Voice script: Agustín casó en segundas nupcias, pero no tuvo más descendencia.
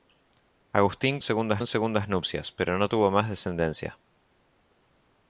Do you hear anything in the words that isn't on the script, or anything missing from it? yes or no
yes